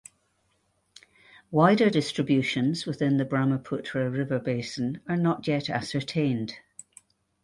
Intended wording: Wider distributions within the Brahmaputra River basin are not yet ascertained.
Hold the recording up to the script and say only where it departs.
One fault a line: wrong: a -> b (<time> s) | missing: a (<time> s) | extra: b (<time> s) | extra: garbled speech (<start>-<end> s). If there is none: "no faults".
no faults